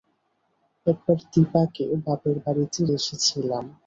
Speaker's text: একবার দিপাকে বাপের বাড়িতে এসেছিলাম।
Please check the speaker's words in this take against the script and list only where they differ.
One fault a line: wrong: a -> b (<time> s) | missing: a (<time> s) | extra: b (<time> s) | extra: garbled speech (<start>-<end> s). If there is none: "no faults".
no faults